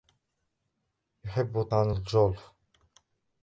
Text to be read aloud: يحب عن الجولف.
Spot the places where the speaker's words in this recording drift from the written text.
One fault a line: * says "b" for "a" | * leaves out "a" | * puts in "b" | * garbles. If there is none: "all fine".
all fine